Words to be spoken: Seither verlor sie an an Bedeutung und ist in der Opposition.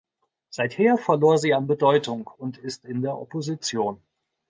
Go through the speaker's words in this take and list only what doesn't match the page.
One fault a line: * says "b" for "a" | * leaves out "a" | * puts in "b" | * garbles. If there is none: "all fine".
* leaves out "an"